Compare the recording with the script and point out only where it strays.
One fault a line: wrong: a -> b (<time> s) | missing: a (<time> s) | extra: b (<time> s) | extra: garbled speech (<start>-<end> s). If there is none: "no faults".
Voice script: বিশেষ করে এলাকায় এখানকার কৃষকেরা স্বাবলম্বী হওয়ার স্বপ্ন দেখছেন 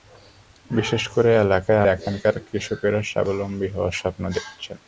no faults